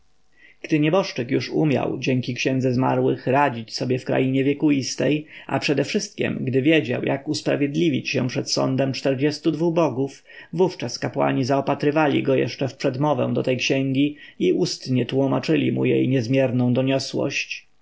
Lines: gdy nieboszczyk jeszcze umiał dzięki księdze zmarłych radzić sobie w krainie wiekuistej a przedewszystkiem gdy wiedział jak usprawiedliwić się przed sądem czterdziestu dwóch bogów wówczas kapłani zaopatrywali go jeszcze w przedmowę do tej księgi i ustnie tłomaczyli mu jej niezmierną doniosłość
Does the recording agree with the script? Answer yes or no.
no